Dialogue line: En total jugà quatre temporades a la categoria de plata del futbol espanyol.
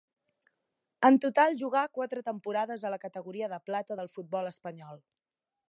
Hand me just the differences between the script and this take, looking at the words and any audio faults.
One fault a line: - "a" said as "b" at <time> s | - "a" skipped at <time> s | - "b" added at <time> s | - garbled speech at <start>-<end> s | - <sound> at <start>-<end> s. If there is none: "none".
none